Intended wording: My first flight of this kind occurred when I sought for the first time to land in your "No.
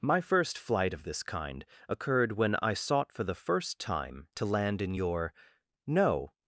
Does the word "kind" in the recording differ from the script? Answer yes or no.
no